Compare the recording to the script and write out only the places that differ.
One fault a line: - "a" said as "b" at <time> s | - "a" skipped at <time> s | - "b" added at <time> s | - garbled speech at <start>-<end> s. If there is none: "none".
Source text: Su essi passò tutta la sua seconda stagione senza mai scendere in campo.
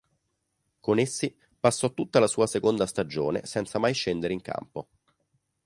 - "Su" said as "Con" at 0.8 s